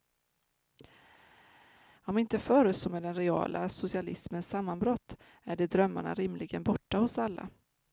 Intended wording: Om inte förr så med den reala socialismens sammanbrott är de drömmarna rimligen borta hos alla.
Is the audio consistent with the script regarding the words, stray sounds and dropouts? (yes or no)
yes